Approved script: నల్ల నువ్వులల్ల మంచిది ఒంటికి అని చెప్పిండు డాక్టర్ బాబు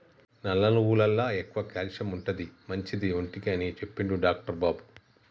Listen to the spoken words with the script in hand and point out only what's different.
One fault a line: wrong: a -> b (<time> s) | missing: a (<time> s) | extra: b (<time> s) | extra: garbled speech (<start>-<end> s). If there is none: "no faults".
extra: ఎక్కువ క్యాల్షియం ఉంటది (1.4 s)